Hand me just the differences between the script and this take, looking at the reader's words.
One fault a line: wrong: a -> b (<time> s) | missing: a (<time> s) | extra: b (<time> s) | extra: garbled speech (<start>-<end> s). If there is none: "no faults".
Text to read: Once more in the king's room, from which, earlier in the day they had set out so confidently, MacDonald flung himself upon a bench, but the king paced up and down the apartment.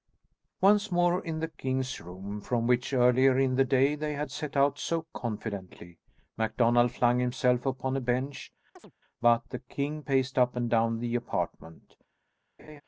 no faults